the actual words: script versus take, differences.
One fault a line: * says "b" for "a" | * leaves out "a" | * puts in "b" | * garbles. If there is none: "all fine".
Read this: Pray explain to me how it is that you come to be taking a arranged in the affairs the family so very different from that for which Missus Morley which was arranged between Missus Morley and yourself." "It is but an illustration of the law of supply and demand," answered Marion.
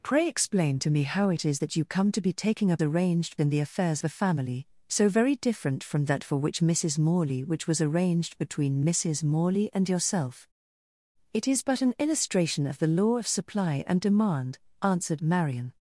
all fine